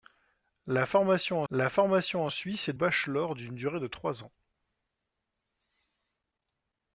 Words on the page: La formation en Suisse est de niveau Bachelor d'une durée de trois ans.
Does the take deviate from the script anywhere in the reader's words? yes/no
yes